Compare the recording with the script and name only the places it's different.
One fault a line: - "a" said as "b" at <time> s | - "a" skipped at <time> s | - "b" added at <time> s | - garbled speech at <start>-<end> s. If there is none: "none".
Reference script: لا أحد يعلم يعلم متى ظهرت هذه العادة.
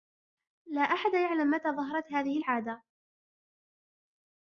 - "يعلم" skipped at 1.5 s